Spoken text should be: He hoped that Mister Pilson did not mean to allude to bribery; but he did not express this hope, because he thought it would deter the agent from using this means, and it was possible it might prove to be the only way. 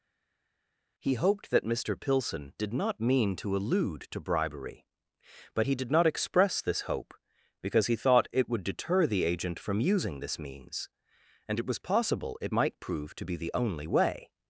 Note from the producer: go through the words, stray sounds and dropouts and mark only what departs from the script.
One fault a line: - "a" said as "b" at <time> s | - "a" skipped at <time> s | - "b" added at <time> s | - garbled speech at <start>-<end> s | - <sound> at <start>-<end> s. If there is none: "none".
none